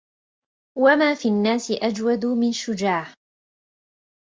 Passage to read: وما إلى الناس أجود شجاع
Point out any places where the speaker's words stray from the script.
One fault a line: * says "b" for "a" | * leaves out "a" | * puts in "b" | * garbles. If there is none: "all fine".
* says "في" for "إلى"
* puts in "من"